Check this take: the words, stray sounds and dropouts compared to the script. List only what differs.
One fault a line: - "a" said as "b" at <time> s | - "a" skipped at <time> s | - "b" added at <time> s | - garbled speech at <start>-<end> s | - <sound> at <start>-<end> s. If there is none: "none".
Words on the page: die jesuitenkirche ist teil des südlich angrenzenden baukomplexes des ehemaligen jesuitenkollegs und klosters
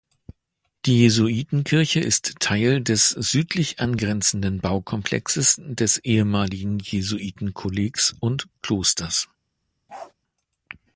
- bark at 9.9-10.1 s